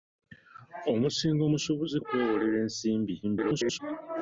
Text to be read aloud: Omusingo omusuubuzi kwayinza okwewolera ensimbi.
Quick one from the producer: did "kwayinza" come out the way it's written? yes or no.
no